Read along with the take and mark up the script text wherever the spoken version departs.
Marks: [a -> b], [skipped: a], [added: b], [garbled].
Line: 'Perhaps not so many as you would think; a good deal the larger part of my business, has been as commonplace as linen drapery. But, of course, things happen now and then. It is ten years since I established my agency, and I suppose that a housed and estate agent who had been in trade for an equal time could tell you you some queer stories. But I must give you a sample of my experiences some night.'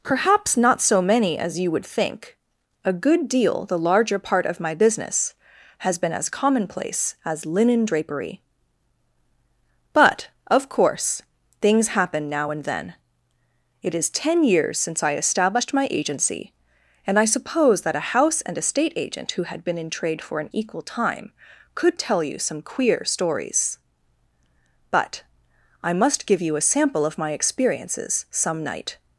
'Perhaps not so many as you would think; a good deal the larger part of my business, has been as commonplace as linen drapery. But, of course, things happen now and then. It is ten years since I established my agency, and I suppose that a [housed -> house] and estate agent who had been in trade for an equal time could tell you [skipped: you] some queer stories. But I must give you a sample of my experiences some night.'